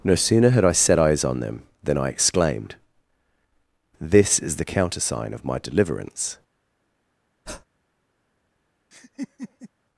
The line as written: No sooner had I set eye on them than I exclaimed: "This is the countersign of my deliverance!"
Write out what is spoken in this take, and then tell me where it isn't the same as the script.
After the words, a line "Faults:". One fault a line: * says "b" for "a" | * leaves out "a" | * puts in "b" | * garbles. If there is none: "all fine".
No sooner had I set eyes on them than I exclaimed: "This is the countersign of my deliverance!"
Faults:
* says "eyes" for "eye"